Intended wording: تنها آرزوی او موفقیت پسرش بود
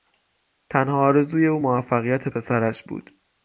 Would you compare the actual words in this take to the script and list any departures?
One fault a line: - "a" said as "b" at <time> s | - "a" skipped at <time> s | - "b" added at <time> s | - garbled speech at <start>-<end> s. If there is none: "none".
none